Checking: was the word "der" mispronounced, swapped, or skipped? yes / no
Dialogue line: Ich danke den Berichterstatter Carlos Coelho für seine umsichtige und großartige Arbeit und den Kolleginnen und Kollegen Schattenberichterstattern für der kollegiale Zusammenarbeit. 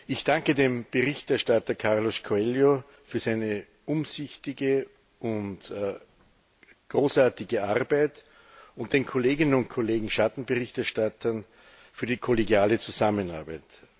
yes